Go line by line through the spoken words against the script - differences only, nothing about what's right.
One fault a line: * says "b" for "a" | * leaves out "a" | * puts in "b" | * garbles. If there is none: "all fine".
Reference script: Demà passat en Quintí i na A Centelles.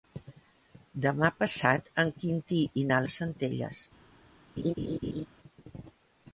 all fine